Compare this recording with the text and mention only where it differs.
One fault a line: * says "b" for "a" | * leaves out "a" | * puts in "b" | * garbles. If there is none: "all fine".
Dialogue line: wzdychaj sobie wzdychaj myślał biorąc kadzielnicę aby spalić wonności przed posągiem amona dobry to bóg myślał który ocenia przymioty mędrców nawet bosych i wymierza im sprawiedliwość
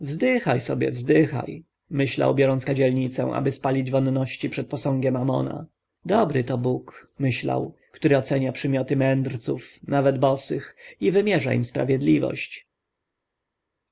all fine